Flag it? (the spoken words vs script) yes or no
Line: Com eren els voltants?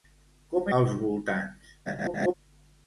yes